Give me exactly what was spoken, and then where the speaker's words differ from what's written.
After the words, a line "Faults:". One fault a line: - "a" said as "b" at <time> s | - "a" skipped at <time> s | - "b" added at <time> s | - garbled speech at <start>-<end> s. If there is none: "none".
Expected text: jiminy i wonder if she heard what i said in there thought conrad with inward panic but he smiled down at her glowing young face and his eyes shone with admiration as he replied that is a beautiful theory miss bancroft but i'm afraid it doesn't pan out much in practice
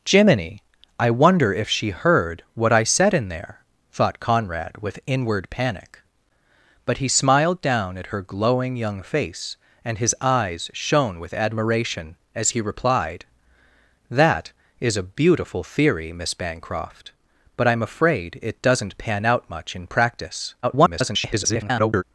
jiminy i wonder if she heard what i said in there thought conrad with inward panic but he smiled down at her glowing young face and his eyes shone with admiration as he replied that is a beautiful theory miss bancroft but i'm afraid it doesn't pan out much in practice [garbled]
Faults:
- garbled speech at 20.6-22.0 s